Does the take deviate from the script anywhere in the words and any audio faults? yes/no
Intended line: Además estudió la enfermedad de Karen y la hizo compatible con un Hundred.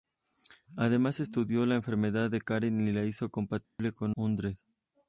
yes